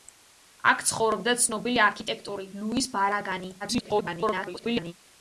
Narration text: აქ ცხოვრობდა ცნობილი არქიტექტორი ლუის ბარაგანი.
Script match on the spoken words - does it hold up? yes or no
no